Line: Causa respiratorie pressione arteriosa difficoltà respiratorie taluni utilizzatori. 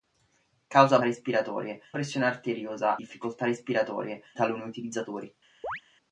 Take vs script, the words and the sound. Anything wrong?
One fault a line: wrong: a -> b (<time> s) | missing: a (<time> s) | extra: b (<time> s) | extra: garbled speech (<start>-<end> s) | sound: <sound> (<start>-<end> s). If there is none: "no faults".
sound: chirp (5.6-5.8 s)